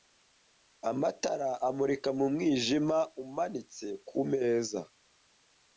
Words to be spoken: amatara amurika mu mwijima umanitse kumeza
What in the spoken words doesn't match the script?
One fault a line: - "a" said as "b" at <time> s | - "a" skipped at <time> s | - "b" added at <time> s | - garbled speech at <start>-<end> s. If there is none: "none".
none